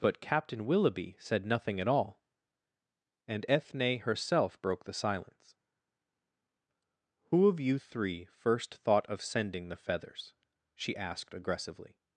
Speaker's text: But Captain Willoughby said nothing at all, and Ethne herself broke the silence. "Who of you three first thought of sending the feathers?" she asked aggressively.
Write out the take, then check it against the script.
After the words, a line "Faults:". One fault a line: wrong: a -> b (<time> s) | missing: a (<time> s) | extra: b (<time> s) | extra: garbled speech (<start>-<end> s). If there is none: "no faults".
But Captain Willoughby said nothing at all, and Ethne herself broke the silence. "Who of you three first thought of sending the feathers?" she asked aggressively.
Faults:
no faults